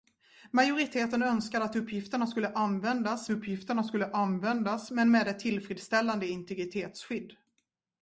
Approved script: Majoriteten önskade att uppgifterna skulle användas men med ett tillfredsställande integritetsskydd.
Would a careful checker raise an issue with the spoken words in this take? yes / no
yes